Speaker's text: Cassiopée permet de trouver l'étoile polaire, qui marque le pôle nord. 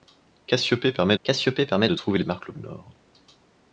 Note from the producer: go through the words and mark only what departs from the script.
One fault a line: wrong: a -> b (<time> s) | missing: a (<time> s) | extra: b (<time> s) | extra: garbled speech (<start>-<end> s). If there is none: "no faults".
extra: cassiopée permet (1.2 s)
missing: l'étoile polaire qui (2.2 s)
missing: pôle (2.5 s)